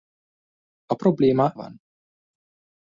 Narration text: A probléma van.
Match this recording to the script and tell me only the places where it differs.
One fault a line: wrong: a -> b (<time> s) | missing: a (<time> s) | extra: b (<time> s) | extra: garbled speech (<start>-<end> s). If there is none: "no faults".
no faults